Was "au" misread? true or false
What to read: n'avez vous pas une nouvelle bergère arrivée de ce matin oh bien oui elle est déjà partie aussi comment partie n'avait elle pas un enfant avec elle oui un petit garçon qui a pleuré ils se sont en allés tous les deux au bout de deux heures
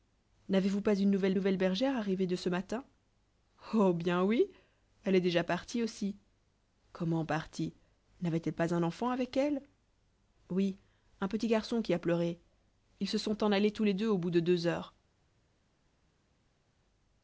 false